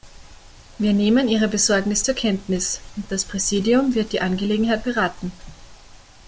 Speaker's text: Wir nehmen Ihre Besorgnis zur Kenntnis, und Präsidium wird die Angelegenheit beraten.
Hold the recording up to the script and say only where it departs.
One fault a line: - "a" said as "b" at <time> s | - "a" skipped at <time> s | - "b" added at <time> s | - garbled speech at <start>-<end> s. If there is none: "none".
- "das" added at 3.1 s